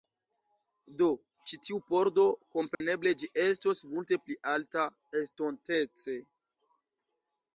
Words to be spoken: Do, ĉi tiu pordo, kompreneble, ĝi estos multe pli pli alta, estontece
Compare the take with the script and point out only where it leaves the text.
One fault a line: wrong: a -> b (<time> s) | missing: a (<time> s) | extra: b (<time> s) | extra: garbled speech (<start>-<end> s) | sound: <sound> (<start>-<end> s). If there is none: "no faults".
sound: dropout (2.7-2.8 s)
missing: pli (4.4 s)